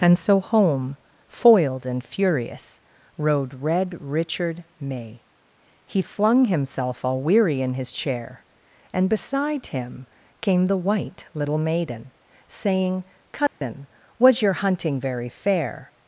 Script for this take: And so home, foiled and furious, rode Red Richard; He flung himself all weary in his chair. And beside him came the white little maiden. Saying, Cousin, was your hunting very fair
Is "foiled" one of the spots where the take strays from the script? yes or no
no